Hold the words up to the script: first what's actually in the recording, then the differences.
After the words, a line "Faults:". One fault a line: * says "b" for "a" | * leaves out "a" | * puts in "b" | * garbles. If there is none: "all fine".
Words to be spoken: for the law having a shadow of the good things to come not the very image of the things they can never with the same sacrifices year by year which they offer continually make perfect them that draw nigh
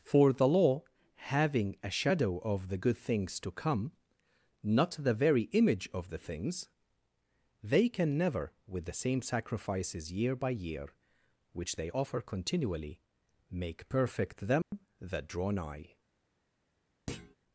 for the law having a shadow of the good things to come not the very image of the things they can never with the same sacrifices year by year which they offer continually make perfect them that draw nigh
Faults:
all fine